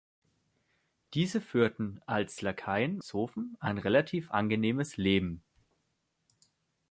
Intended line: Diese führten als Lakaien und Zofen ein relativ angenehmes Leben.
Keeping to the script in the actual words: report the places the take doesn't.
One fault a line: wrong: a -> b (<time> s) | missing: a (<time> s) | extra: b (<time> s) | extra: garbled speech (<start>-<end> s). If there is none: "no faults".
missing: und (3.0 s)